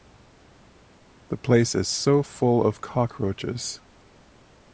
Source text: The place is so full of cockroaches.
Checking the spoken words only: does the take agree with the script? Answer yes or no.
yes